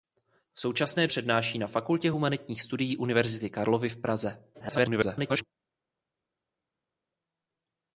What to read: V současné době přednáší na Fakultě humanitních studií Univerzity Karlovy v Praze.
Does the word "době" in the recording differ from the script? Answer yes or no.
yes